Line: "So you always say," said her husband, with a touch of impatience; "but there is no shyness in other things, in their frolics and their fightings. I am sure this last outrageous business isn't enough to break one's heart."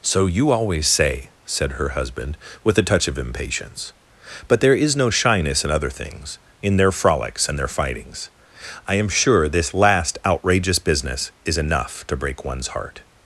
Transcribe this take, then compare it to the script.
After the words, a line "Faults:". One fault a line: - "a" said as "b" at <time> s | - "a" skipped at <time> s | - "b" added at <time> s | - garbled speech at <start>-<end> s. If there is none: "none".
"So you always say," said her husband, with a touch of impatience; "but there is no shyness in other things, in their frolics and their fightings. I am sure this last outrageous business is enough to break one's heart."
Faults:
- "isn't" said as "is" at 11.4 s